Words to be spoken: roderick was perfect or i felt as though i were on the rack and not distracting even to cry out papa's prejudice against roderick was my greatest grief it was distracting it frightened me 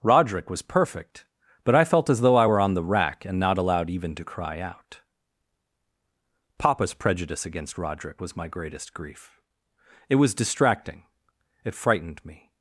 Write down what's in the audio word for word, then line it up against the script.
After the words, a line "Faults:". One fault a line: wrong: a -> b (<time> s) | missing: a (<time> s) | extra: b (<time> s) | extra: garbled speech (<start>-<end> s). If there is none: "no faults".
roderick was perfect but i felt as though i were on the rack and not allowed even to cry out papa's prejudice against roderick was my greatest grief it was distracting it frightened me
Faults:
wrong: or -> but (1.6 s)
wrong: distracting -> allowed (3.6 s)